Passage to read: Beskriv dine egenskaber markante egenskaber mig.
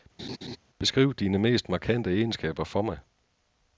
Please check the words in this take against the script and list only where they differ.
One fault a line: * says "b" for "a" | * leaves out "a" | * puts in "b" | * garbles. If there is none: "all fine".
* says "mest" for "egenskaber"
* puts in "for"